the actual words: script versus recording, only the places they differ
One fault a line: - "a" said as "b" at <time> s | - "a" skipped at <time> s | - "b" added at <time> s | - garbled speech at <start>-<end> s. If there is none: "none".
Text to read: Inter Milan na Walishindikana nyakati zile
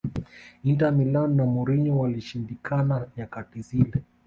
- "Mourinho" added at 1.4 s